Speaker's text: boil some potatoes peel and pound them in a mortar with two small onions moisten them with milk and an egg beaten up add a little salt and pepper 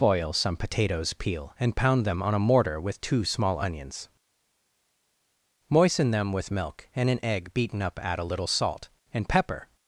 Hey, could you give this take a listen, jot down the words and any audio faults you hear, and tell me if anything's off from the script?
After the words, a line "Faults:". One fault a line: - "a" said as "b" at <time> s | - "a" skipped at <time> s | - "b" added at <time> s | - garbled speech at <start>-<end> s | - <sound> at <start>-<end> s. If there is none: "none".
boil some potatoes peel and pound them on a mortar with two small onions moisten them with milk and an egg beaten up add a little salt and pepper
Faults:
- "in" said as "on" at 2.2 s